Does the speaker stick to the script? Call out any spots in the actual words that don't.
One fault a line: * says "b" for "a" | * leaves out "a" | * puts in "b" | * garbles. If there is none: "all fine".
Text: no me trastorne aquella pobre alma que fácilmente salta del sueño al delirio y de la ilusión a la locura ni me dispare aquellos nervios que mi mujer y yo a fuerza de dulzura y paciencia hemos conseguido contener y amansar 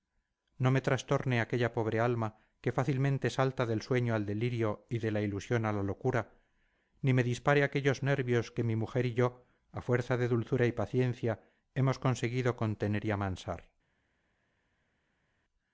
all fine